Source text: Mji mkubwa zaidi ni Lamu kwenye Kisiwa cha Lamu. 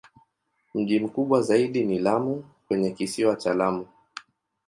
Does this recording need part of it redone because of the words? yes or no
no